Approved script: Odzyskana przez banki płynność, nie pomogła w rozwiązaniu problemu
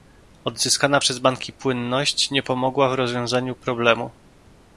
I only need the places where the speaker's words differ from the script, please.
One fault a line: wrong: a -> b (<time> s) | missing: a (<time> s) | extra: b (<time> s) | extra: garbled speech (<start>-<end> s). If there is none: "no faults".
no faults